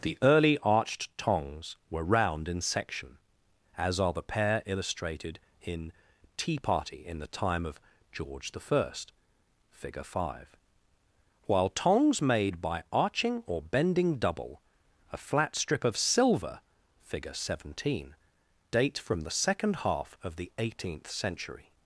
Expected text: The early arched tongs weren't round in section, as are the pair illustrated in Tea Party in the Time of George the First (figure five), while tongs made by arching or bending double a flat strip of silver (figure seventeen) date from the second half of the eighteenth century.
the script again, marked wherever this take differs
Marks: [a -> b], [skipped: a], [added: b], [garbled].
The early arched tongs [weren't -> were] round in section, as are the pair illustrated in Tea Party in the Time of George the First (figure five), while tongs made by arching or bending double a flat strip of silver (figure seventeen) date from the second half of the eighteenth century.